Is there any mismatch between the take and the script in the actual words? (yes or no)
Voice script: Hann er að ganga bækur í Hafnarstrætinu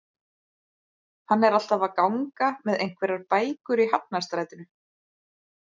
yes